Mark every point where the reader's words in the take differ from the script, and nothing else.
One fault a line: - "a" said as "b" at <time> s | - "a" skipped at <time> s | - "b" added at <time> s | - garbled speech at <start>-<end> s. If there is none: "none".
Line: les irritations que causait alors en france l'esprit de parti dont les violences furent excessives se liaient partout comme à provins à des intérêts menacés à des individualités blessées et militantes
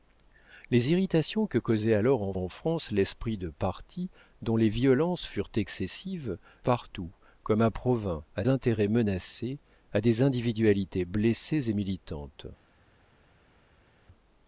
- "en" added at 2.4 s
- "se liaient" skipped at 6.4 s
- "des" skipped at 8.5 s